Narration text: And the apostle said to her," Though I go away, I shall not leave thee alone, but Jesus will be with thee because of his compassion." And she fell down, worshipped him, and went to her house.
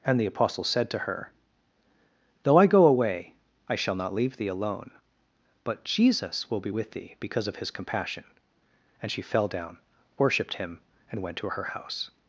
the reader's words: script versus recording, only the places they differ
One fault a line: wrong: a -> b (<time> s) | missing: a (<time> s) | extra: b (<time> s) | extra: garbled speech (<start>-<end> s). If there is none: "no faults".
no faults